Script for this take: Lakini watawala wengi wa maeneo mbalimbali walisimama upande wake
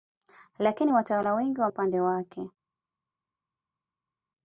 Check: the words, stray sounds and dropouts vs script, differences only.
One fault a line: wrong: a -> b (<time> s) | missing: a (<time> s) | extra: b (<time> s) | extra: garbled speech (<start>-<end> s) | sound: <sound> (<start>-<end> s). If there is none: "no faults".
missing: maeneo mbalimbali walisimama (1.7 s)